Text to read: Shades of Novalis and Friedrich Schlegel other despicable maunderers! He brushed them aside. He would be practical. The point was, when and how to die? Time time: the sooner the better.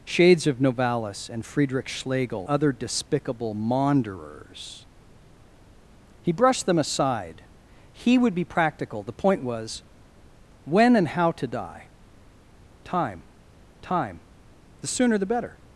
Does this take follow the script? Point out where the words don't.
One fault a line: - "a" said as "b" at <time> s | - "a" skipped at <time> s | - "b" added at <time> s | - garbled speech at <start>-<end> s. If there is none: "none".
none